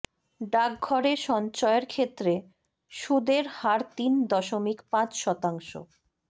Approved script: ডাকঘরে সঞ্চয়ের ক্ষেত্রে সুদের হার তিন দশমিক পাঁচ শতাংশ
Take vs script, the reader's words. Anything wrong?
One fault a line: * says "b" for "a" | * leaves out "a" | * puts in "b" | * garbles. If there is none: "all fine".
all fine